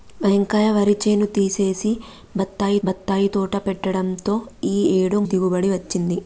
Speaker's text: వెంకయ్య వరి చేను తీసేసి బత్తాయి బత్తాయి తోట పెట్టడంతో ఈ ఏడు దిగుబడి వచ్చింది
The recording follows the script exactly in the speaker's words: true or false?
true